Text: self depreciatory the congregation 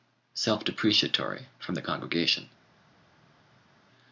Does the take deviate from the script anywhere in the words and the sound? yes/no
yes